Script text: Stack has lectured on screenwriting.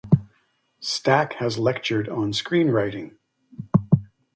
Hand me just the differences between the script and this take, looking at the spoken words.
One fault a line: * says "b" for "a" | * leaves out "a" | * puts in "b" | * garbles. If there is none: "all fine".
all fine